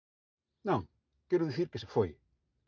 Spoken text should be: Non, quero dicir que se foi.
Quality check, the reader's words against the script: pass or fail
pass